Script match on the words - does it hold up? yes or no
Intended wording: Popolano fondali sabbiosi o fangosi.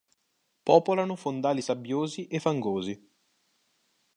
no